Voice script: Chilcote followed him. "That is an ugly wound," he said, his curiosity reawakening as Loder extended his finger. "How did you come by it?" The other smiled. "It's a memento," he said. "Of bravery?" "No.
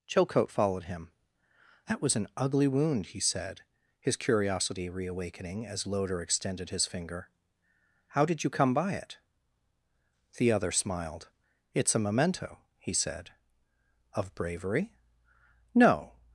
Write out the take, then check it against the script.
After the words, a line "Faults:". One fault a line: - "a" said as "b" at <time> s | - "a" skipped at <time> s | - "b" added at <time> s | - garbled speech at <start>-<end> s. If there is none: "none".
Chilcote followed him. "That was an ugly wound," he said, his curiosity reawakening as Loder extended his finger. "How did you come by it?" The other smiled. "It's a memento," he said. "Of bravery?" "No.
Faults:
- "is" said as "was" at 2.0 s